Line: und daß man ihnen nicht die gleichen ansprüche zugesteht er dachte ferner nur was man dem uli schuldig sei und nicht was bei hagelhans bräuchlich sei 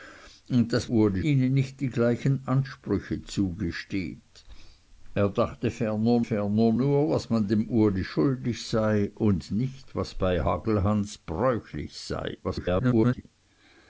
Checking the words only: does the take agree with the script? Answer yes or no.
no